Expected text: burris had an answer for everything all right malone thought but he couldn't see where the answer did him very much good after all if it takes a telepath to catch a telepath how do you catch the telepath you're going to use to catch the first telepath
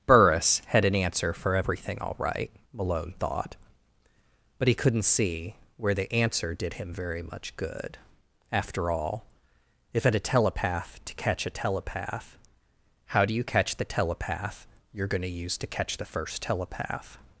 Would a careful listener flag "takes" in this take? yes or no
yes